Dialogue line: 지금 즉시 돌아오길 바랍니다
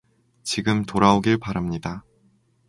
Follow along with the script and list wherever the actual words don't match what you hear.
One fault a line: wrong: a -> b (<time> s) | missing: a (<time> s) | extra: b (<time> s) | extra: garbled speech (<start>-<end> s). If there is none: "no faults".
missing: 즉시 (0.8 s)